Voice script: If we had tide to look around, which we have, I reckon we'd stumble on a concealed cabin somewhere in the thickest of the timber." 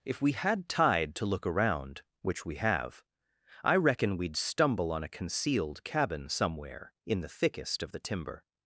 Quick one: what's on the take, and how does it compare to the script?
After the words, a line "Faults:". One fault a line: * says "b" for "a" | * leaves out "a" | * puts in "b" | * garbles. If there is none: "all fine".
If we had tide to look around, which we have, I reckon we'd stumble on a concealed cabin somewhere in the thickest of the timber."
Faults:
all fine